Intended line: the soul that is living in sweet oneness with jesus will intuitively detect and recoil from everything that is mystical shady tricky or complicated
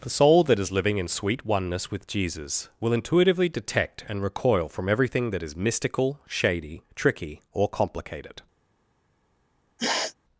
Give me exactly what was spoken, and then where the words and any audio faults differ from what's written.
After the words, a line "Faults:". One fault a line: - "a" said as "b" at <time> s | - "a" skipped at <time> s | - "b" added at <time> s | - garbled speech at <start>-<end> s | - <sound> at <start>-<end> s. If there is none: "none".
the soul that is living in sweet oneness with jesus will intuitively detect and recoil from everything that is mystical shady tricky or complicated
Faults:
- sniff at 9.8-10.1 s